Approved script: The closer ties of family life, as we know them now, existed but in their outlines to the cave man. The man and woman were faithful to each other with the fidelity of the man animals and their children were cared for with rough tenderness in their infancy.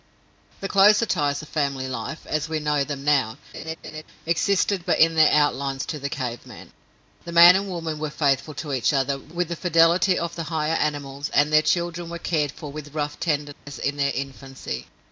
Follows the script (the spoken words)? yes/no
no